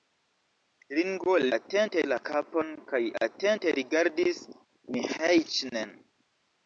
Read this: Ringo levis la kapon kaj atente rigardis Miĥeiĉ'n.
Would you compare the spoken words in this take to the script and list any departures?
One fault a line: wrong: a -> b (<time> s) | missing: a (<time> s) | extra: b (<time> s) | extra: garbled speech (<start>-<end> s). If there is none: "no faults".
wrong: levis -> atente (1.6 s)